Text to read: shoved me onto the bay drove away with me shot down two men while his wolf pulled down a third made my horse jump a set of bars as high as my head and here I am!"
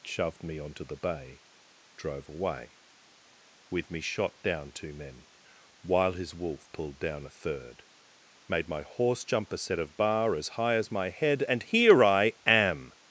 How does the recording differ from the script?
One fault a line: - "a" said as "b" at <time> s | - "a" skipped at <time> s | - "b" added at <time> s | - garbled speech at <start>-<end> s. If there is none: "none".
- "bars" said as "bar" at 9.9 s